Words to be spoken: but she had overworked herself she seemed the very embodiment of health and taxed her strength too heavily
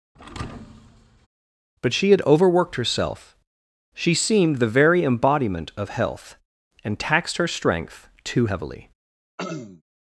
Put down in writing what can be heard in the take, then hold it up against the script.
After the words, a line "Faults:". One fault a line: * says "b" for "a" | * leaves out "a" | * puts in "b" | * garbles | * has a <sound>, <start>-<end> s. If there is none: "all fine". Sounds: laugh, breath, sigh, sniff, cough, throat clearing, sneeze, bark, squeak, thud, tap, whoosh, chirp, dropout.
but she had overworked herself she seemed the very embodiment of health and taxed her strength too heavily
Faults:
* has a thud, 0.1-1.3 s
* has a throat clearing, 9.4-9.8 s